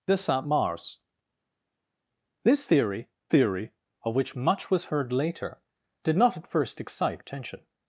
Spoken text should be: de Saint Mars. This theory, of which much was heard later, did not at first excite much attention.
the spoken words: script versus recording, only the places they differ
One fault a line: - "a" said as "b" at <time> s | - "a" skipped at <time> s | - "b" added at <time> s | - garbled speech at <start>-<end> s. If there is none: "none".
- "theory" added at 3.3 s
- "much" skipped at 7.2 s